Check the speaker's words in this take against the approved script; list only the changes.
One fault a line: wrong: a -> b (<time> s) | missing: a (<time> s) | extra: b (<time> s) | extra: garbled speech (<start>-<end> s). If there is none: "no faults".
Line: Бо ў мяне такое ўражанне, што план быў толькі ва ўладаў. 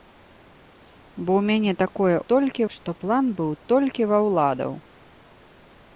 wrong: ўражанне -> толькі (2.4 s)